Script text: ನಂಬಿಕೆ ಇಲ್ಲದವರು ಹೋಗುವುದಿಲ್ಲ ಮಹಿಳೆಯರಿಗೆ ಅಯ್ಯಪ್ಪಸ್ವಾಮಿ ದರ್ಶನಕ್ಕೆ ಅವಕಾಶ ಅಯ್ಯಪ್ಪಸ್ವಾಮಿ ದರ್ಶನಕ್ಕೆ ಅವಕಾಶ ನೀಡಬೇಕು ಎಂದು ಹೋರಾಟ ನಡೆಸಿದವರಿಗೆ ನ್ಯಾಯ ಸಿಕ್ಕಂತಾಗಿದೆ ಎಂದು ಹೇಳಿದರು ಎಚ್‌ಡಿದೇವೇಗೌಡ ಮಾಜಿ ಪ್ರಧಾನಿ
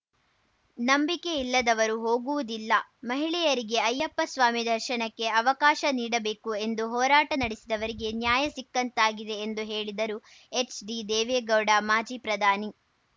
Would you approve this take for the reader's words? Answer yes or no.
no